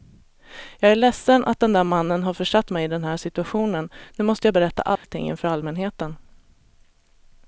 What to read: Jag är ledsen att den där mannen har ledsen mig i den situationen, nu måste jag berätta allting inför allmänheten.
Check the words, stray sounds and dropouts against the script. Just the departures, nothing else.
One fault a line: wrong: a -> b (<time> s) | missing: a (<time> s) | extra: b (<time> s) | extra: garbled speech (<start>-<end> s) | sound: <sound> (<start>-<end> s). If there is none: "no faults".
wrong: ledsen -> försatt (2.3 s)
extra: här (3.0 s)
sound: dropout (5.0-5.0 s)